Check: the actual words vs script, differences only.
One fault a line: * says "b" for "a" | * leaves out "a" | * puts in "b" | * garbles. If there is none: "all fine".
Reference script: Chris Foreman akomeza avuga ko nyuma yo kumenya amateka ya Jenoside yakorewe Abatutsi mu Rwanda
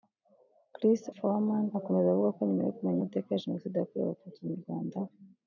all fine